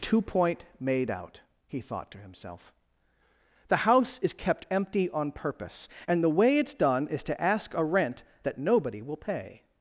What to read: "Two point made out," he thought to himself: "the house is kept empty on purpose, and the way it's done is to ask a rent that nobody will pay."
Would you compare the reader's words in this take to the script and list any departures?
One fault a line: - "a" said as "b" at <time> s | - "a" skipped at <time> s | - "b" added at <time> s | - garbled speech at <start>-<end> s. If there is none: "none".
none